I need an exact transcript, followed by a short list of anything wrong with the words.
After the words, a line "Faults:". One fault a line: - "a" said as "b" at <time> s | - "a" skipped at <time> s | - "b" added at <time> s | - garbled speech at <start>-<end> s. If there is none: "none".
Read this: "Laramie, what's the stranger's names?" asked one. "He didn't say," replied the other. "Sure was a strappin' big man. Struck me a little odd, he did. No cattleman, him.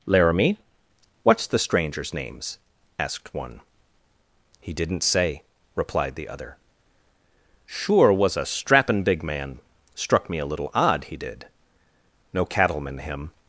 "Laramie, what's the stranger's names?" asked one. "He didn't say," replied the other. "Sure was a strappin' big man. Struck me a little odd, he did. No cattleman, him.
Faults:
none